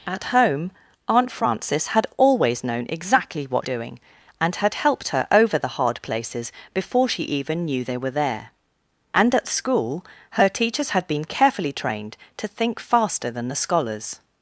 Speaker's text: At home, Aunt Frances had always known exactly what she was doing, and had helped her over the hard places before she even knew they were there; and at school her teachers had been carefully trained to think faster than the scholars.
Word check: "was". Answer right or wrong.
wrong